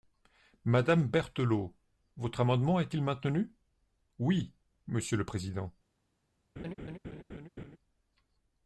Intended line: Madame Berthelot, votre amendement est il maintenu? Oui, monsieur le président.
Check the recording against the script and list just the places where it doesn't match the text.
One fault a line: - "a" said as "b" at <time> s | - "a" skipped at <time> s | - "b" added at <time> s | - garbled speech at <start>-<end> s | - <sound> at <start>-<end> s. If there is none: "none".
- laugh at 6.6-7.8 s